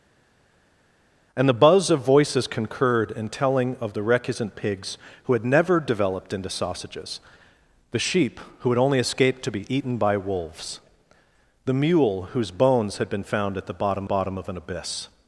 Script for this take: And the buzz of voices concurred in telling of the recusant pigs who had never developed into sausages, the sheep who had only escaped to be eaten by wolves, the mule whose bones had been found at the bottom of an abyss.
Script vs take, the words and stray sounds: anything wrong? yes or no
yes